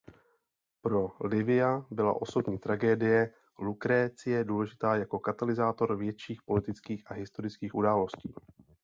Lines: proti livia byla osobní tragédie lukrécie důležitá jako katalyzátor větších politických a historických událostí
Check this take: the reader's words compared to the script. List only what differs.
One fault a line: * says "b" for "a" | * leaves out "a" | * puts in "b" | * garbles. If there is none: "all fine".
* says "pro" for "proti"